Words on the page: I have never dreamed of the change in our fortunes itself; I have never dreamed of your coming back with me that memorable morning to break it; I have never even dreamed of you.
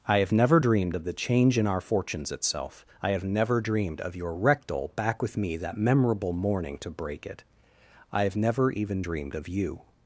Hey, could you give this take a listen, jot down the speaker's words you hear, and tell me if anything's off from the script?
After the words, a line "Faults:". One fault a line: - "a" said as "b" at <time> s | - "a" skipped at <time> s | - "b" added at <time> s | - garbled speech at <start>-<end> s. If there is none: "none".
I have never dreamed of the change in our fortunes itself; I have never dreamed of your rectal back with me that memorable morning to break it; I have never even dreamed of you.
Faults:
- "coming" said as "rectal" at 4.3 s